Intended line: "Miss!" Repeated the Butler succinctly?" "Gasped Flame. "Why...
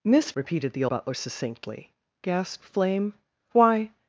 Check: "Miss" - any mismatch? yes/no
no